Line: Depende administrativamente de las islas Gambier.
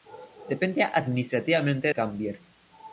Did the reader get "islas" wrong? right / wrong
wrong